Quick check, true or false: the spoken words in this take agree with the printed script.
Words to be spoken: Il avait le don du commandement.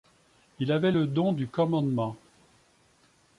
true